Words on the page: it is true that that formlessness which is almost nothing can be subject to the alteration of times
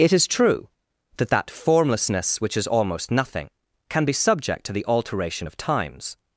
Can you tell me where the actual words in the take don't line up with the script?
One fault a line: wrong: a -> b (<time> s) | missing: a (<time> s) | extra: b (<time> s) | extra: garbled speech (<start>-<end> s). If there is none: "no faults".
no faults